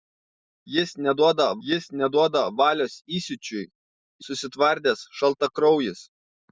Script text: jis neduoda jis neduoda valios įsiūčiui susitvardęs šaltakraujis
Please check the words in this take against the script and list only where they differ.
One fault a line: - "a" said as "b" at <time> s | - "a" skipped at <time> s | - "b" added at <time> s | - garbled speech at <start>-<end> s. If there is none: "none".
none